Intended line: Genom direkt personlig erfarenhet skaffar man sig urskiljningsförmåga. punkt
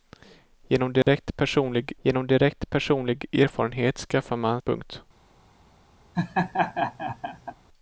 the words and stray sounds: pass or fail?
fail